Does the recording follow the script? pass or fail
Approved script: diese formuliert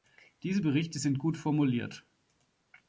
fail